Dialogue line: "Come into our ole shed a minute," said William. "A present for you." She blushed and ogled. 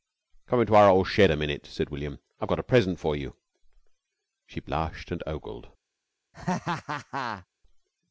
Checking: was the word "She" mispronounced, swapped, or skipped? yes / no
no